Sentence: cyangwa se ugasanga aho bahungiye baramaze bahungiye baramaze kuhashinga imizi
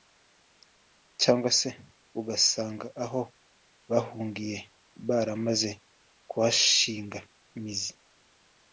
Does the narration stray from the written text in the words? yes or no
yes